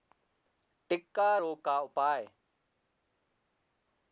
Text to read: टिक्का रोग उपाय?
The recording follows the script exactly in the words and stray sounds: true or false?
false